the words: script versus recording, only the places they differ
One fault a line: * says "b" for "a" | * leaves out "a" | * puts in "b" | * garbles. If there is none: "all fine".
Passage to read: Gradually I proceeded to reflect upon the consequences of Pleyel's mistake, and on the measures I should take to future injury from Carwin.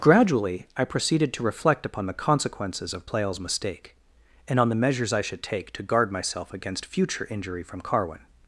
* puts in "guard myself against"